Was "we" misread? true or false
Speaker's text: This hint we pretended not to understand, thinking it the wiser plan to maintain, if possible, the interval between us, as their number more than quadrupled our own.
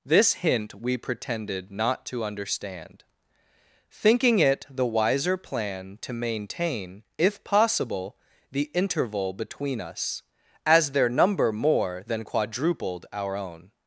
false